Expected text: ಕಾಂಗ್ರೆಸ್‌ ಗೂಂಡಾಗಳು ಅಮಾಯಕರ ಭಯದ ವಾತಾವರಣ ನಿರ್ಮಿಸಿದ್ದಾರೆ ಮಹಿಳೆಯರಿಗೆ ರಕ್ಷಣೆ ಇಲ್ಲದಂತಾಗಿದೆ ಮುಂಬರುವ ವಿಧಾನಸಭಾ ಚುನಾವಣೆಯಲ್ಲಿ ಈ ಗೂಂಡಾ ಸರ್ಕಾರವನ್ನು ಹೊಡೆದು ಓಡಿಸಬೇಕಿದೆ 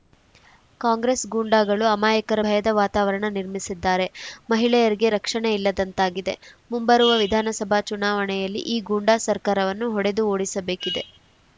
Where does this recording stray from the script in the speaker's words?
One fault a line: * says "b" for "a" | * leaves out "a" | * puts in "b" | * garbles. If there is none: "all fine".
all fine